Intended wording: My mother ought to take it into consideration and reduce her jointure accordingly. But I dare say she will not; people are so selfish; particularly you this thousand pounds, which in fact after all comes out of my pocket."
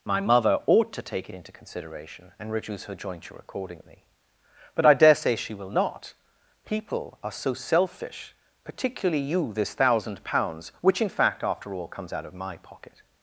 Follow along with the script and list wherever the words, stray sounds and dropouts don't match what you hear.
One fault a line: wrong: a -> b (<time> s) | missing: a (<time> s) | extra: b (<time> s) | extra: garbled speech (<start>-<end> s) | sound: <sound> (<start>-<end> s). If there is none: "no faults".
no faults